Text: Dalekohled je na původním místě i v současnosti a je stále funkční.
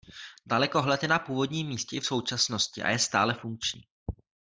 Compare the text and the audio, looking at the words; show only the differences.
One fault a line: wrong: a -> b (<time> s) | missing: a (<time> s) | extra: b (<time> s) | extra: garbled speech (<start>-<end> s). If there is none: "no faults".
no faults